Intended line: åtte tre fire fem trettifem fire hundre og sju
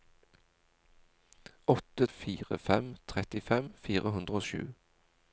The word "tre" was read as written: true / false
false